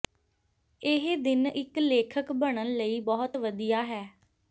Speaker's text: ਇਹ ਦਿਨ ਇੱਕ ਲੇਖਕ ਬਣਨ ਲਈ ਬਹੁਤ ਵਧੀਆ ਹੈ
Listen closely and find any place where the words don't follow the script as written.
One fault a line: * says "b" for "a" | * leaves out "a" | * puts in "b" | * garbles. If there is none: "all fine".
all fine